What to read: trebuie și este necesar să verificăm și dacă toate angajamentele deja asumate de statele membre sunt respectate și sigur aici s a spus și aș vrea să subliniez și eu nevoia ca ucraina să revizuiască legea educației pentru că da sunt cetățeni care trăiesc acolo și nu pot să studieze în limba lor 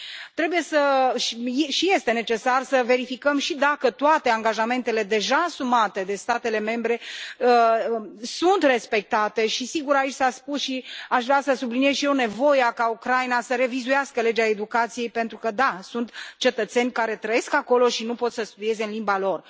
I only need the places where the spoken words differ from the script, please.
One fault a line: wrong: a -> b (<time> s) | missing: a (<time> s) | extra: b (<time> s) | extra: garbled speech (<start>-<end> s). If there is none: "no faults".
no faults